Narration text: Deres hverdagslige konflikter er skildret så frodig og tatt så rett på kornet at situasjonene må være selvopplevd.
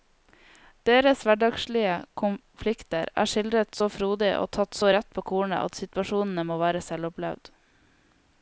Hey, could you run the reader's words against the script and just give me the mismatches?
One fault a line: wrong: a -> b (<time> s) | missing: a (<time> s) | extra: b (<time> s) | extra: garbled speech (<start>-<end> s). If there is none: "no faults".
no faults